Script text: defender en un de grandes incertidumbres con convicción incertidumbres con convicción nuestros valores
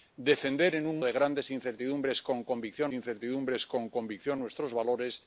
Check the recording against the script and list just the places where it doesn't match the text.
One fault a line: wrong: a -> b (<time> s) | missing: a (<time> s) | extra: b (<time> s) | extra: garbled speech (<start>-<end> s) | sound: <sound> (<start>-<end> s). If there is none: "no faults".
no faults